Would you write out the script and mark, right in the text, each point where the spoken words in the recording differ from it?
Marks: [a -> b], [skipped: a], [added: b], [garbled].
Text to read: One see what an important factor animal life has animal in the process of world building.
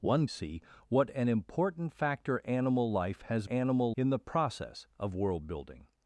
One see what an important factor animal life has animal in the process of world building.